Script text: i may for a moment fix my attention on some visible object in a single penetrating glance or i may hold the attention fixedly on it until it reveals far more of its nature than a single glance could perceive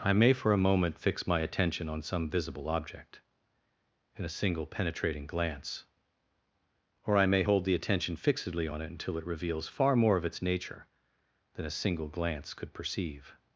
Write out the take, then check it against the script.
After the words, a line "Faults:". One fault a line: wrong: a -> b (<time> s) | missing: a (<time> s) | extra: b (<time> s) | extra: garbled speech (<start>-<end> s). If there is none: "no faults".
i may for a moment fix my attention on some visible object in a single penetrating glance or i may hold the attention fixedly on it until it reveals far more of its nature than a single glance could perceive
Faults:
no faults